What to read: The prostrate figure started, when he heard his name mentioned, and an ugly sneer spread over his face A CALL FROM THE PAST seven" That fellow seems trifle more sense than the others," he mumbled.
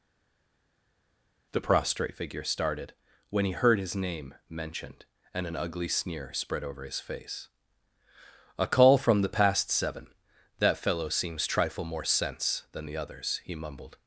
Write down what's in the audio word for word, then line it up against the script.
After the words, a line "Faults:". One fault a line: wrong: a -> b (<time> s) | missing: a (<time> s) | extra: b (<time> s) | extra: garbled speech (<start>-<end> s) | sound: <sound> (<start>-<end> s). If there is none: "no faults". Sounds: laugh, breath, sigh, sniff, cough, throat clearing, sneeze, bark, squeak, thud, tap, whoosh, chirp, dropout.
The prostrate figure started, when he heard his name mentioned, and an ugly sneer spread over his face A CALL FROM THE PAST seven" That fellow seems trifle more sense than the others," he mumbled.
Faults:
no faults